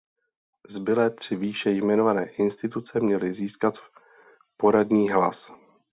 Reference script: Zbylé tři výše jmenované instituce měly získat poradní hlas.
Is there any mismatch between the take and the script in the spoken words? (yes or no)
no